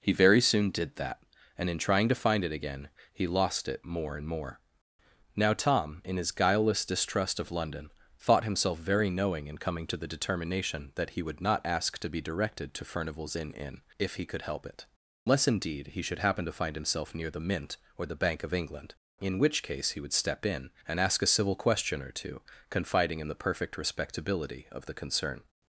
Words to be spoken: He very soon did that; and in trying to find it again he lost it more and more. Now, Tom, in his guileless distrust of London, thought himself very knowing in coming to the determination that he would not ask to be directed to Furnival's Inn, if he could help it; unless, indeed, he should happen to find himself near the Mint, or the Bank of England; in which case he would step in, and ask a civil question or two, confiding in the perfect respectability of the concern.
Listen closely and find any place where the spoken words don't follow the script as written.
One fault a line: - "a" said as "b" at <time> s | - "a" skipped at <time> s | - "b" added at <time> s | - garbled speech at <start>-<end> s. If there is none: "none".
- "Inn" added at 13.5 s